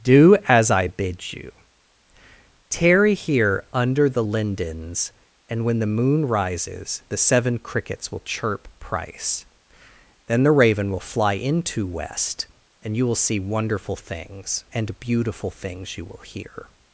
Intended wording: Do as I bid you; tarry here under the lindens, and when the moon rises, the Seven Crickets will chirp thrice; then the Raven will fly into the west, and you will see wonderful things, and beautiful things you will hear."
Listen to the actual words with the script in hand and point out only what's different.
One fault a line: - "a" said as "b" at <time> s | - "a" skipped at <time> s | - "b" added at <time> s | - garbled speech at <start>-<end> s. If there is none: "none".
- "thrice" said as "price" at 8.8 s
- "the" skipped at 11.9 s